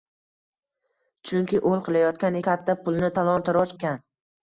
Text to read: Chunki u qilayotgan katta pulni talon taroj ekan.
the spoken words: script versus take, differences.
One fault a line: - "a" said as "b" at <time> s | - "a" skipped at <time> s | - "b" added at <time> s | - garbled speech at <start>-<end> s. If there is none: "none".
none